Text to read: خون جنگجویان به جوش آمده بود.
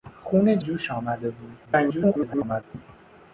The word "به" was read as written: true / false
false